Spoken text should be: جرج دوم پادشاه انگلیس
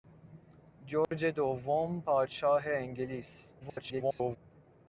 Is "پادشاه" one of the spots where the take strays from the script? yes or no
no